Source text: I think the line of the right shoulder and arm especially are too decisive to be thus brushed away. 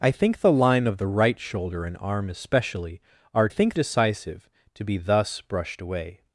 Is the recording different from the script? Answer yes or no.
yes